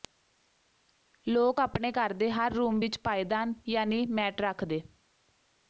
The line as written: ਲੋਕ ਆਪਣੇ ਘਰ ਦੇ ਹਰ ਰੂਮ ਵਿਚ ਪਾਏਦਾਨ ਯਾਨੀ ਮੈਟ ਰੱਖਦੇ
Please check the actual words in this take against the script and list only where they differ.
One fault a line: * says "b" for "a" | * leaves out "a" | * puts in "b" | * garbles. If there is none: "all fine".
all fine